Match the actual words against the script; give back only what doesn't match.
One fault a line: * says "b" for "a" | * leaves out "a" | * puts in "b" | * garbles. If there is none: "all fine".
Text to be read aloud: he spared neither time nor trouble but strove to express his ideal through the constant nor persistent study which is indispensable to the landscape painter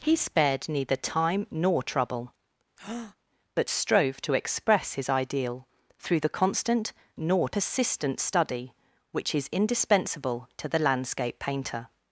all fine